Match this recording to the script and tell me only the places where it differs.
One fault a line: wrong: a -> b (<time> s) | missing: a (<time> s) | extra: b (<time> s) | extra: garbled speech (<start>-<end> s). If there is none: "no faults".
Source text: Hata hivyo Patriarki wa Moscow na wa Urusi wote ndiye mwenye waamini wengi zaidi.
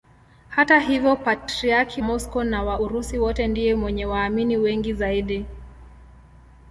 missing: wa (2.0 s)